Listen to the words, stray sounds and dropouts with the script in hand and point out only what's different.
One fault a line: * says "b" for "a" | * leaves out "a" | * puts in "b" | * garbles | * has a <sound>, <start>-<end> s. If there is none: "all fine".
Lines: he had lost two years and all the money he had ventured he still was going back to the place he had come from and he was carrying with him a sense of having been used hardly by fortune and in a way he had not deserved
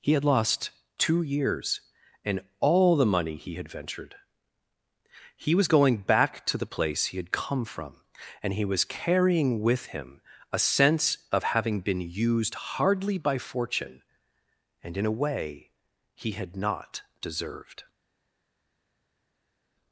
* leaves out "still"